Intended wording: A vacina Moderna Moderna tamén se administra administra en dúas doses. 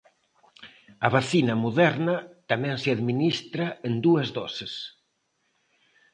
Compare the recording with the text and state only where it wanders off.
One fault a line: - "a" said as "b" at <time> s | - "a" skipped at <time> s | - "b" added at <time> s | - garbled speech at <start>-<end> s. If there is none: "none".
- "Moderna" skipped at 2.2 s
- "administra" skipped at 3.7 s